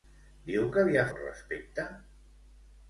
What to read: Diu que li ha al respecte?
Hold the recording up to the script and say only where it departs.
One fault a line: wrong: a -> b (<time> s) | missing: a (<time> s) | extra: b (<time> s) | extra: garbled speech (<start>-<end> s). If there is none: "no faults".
no faults